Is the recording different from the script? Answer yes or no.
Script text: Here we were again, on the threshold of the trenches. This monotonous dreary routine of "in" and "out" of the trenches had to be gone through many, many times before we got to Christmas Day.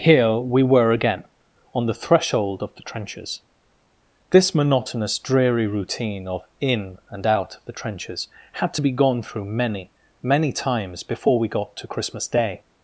no